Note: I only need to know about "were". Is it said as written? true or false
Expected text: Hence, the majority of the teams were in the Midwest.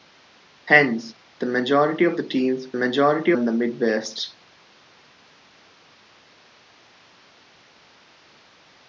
false